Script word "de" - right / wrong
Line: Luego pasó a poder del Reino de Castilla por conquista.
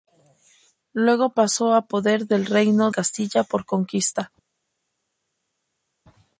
wrong